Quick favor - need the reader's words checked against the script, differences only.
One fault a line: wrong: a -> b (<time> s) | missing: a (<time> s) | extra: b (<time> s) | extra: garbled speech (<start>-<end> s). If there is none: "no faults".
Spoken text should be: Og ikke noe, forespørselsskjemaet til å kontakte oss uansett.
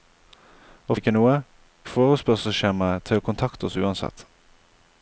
no faults